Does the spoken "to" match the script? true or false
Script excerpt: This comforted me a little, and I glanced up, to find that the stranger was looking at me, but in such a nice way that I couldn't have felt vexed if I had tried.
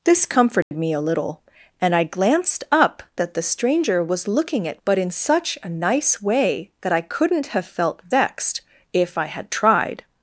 false